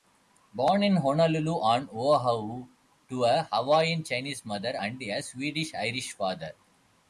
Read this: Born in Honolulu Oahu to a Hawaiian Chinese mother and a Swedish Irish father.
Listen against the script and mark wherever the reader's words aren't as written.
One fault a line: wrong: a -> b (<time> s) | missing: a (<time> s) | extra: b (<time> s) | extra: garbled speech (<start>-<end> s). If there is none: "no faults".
extra: on (1.6 s)